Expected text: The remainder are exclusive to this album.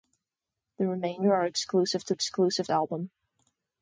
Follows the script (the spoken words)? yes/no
no